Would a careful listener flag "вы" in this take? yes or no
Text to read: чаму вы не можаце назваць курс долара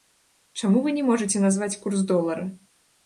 no